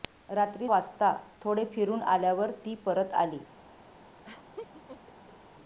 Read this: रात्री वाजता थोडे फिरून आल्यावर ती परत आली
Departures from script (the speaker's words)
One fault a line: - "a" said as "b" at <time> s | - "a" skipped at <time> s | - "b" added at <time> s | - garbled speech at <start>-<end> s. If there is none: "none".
none